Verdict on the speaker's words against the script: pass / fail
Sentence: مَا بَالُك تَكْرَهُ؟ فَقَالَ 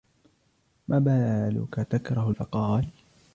pass